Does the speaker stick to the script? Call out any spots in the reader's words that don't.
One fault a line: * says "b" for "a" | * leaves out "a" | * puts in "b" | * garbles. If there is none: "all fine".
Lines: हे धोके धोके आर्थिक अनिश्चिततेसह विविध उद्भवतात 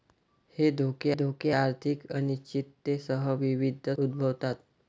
all fine